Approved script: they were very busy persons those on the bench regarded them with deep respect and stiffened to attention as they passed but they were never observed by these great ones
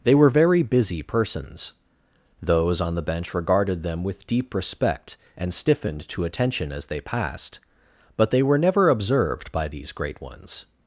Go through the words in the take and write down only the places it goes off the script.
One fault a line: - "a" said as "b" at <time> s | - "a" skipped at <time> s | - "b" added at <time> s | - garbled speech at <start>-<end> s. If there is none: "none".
none